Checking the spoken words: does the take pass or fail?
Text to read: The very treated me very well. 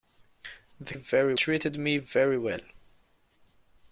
pass